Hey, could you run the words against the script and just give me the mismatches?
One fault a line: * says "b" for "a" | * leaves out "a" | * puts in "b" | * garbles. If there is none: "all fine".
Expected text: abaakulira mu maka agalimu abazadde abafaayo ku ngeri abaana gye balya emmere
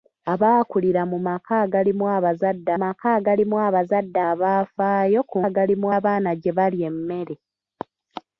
* puts in "maka agalimu abazadde"
* says "agalimu" for "ngeri"